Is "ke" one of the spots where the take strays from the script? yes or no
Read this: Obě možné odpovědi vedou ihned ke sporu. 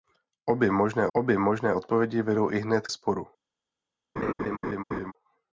yes